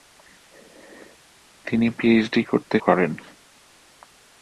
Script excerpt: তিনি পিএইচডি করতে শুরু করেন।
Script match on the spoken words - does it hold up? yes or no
no